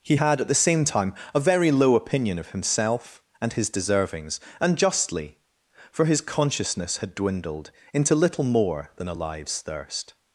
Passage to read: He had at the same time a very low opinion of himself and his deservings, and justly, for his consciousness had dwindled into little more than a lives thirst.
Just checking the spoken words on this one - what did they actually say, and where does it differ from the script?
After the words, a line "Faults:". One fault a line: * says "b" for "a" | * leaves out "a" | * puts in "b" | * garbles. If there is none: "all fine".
He had at the same time a very low opinion of himself and his deservings, and justly, for his consciousness had dwindled into little more than a lives thirst.
Faults:
all fine